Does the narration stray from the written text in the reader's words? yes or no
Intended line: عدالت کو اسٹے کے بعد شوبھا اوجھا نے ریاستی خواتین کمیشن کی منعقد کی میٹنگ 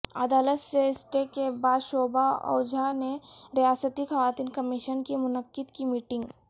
yes